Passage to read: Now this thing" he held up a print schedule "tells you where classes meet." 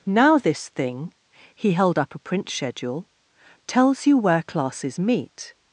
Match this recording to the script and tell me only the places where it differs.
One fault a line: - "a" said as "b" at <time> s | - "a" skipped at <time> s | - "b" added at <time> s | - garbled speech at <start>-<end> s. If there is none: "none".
none